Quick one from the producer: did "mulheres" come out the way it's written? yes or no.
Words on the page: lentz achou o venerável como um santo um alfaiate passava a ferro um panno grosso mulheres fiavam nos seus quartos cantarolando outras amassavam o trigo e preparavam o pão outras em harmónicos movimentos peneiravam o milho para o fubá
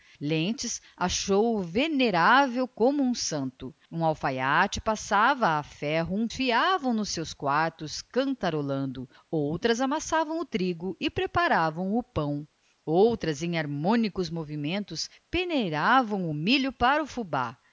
no